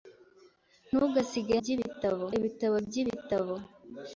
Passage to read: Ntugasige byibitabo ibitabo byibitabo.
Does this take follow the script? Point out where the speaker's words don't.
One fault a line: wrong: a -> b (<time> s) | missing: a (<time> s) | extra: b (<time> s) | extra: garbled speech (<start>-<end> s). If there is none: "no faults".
no faults